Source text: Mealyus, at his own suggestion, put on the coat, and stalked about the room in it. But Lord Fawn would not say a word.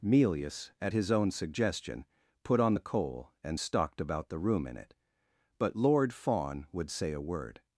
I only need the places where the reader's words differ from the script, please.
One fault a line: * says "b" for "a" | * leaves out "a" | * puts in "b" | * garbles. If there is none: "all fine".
* says "coal" for "coat"
* leaves out "not"